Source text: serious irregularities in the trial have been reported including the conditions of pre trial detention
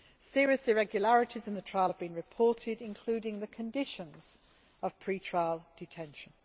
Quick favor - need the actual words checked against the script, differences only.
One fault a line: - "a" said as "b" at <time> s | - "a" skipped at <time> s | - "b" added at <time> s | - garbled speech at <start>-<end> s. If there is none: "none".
none